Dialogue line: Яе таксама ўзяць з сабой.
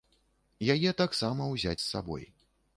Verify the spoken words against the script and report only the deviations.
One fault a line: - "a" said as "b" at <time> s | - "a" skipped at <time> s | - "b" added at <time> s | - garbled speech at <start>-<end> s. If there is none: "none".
none